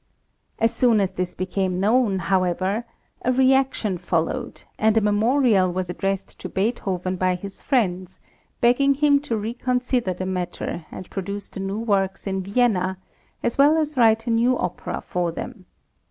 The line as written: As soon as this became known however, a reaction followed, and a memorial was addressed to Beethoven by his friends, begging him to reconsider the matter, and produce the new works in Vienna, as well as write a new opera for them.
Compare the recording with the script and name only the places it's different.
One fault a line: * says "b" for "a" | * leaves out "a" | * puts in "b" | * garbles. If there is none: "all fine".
all fine